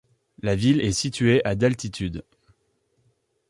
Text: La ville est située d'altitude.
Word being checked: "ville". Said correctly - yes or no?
yes